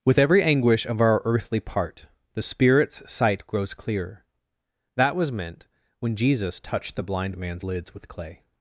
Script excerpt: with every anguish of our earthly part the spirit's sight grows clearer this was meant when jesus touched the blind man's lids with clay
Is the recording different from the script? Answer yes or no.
yes